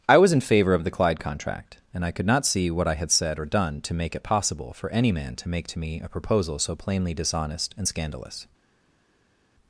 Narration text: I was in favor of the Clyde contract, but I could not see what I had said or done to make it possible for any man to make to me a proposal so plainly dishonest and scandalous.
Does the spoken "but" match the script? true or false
false